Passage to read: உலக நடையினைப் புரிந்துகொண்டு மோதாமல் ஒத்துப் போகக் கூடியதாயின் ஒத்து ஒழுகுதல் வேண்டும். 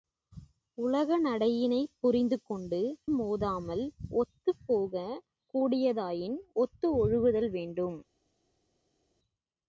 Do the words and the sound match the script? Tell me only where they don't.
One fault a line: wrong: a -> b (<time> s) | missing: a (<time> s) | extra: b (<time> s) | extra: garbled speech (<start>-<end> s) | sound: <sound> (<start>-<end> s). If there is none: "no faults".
no faults